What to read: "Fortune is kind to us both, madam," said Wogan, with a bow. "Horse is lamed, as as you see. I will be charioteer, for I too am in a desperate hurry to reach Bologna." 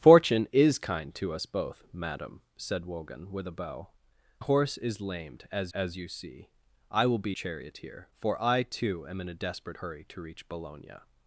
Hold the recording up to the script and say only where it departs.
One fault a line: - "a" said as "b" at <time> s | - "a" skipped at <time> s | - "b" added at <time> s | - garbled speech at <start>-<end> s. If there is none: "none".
none